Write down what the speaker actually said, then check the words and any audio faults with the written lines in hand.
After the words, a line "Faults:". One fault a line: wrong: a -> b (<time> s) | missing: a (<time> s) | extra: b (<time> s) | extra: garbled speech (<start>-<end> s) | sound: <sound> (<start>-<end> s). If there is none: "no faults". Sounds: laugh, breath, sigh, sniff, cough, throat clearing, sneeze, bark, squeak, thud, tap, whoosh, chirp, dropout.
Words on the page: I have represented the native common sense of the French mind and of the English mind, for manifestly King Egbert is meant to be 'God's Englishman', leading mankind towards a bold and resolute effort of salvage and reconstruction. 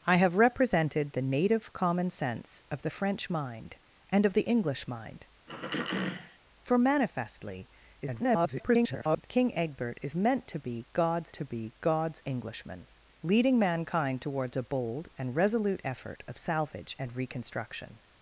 I have represented the native common sense of the French mind and of the English mind, for manifestly [garbled] King Egbert is meant to be 'God's to be God's Englishman', leading mankind towards a bold and resolute effort of salvage and reconstruction.
Faults:
sound: throat clearing (5.5-6.4 s)
extra: garbled speech (8.0-9.3 s)
extra: to be God's (11.3 s)